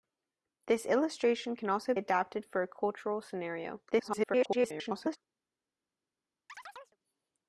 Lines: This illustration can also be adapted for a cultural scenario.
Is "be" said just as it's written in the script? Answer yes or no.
no